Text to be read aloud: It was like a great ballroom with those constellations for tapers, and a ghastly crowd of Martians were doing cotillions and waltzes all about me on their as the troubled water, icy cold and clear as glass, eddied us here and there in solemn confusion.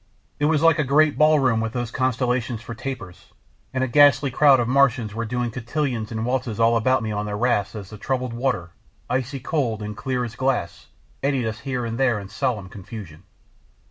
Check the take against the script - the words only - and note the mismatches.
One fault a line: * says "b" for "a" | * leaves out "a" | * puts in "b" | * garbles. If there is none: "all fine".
* puts in "rafts"